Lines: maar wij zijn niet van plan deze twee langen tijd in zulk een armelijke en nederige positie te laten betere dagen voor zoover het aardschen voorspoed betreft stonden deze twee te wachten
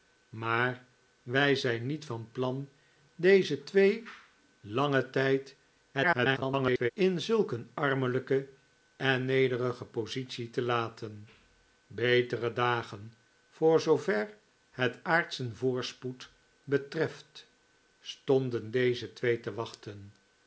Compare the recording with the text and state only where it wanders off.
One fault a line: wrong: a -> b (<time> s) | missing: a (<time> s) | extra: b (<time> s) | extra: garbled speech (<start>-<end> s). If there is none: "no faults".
extra: garbled speech (5.9-6.9 s)